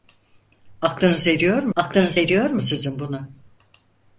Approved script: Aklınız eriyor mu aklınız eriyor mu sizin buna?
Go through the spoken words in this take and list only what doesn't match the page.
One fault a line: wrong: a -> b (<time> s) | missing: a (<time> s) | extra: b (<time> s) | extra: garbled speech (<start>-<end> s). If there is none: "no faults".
no faults